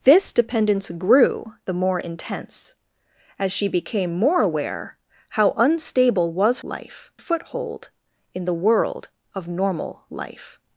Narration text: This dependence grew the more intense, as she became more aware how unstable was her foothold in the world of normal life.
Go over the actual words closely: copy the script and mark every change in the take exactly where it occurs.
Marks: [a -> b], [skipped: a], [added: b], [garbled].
This dependence grew the more intense, as she became more aware how unstable was [her -> life] foothold in the world of normal life.